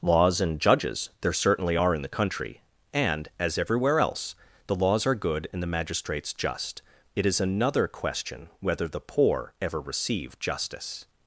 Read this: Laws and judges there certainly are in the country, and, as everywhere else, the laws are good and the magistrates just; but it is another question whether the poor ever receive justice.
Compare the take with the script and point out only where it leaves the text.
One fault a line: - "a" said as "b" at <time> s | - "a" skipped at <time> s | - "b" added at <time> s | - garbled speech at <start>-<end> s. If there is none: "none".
- "but" skipped at 6.8 s